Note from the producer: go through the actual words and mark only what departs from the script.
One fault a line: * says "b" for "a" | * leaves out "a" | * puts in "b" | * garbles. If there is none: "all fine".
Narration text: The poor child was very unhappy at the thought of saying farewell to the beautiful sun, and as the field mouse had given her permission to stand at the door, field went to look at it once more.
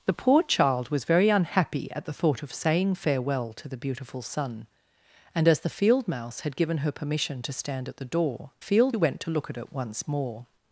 all fine